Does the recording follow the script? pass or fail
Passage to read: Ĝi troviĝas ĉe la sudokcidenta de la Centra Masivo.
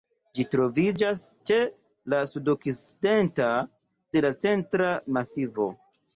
pass